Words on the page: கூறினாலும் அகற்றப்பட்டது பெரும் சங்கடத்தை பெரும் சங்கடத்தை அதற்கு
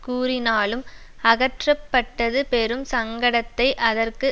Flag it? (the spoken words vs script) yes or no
yes